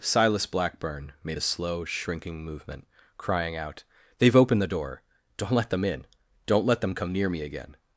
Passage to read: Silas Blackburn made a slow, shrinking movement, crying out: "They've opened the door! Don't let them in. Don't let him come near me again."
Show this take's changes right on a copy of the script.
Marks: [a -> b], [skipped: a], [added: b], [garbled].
Silas Blackburn made a slow, shrinking movement, crying out: "They've opened the door! Don't let them in. Don't let [him -> them] come near me again."